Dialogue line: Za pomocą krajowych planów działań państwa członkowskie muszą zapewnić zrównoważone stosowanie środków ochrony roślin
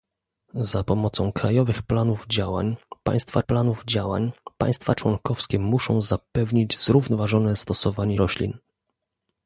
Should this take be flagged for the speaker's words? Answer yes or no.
yes